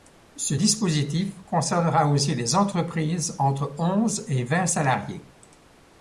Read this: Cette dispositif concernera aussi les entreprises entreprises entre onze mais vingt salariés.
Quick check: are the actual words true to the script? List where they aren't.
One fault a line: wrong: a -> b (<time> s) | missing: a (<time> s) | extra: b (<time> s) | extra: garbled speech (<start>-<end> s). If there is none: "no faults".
wrong: Cette -> Ce (0.3 s)
missing: entreprises (3.4 s)
wrong: mais -> et (4.3 s)